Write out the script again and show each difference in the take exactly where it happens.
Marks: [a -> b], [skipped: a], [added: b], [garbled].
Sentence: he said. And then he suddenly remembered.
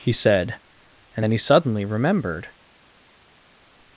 he said. And then he suddenly remembered.